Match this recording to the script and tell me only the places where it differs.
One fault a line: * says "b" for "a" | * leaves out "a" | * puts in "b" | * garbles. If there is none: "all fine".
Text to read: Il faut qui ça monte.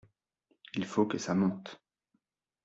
* says "que" for "qui"